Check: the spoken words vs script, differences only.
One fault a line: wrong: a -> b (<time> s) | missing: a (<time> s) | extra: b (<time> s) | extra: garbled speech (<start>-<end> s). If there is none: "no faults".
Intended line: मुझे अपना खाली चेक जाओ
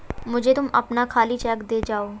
extra: तुम (0.5 s)
extra: दे (1.7 s)